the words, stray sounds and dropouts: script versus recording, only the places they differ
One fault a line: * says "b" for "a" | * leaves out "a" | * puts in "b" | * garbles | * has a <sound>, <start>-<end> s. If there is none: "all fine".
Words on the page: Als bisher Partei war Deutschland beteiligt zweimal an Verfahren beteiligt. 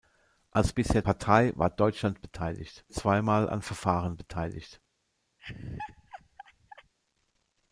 * has a laugh, 5.4-6.9 s